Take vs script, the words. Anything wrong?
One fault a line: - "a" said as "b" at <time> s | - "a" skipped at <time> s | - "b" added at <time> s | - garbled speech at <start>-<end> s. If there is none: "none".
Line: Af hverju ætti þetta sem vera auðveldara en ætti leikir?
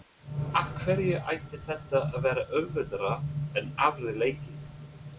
- "sem" said as "að" at 2.1 s
- "ætti" said as "aðrir" at 3.9 s